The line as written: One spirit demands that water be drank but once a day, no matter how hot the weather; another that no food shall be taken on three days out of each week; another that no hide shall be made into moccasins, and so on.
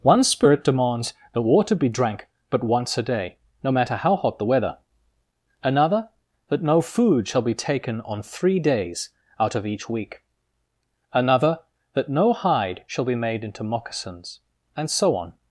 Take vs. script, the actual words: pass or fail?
pass